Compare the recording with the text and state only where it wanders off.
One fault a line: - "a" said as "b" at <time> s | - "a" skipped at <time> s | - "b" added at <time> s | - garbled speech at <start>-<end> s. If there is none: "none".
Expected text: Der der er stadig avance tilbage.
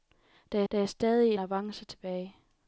none